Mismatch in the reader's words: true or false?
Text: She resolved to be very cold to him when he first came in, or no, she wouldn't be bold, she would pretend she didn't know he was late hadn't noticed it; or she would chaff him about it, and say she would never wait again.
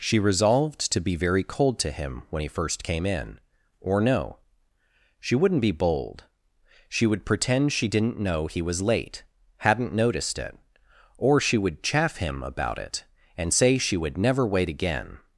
false